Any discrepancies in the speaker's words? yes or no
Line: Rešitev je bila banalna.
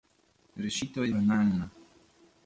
yes